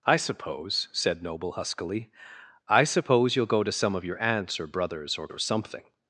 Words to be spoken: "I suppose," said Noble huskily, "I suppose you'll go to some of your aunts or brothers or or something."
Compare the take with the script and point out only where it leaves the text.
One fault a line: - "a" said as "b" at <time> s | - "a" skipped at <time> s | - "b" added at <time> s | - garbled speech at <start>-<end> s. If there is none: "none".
none